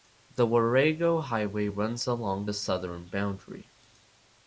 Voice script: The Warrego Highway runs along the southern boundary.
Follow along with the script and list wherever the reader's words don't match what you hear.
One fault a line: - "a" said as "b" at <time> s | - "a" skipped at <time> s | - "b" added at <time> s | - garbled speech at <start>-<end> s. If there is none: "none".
none